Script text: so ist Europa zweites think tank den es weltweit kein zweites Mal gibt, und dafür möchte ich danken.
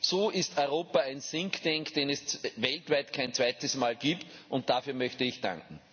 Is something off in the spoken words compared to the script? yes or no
yes